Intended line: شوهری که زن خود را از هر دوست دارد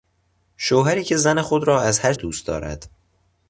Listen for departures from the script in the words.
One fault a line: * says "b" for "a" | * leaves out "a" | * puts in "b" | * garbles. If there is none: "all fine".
all fine